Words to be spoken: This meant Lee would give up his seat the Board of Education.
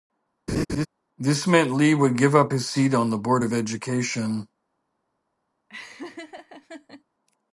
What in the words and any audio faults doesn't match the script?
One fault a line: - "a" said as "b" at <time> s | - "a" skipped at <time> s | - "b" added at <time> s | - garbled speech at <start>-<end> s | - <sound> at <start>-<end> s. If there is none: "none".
- laugh at 0.5-0.9 s
- "on" added at 2.9 s
- laugh at 5.7-7.0 s